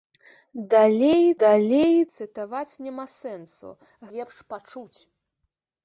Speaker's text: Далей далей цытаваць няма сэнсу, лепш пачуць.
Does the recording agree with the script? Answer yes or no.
yes